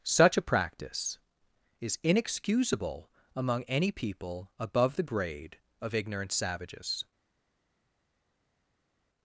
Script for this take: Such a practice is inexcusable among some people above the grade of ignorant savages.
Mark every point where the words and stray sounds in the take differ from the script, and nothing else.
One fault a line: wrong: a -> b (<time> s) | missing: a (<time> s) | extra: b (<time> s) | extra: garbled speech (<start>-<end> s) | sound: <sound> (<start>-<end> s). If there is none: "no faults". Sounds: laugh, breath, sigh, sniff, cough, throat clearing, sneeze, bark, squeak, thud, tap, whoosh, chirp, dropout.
wrong: some -> any (3.6 s)